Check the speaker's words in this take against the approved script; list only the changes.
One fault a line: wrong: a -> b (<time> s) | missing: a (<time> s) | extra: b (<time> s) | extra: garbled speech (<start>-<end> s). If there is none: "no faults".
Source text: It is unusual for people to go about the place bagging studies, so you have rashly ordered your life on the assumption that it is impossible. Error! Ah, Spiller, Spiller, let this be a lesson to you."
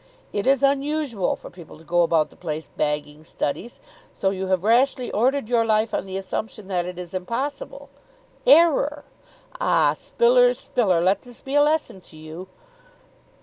no faults